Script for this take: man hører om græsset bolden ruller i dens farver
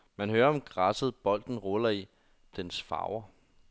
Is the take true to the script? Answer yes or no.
yes